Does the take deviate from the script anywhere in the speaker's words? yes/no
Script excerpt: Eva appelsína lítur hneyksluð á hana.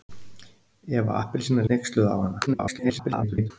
yes